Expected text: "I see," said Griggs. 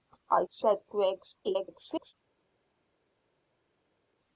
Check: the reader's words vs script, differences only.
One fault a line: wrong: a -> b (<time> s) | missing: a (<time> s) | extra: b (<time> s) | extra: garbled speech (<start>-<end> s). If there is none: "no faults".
missing: see (0.5 s)
extra: garbled speech (1.4-2.1 s)